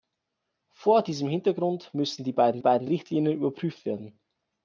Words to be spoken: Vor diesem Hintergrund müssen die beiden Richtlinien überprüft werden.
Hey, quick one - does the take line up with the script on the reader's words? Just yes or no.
no